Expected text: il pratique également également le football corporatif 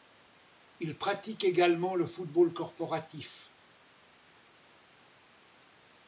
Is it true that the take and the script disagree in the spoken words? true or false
true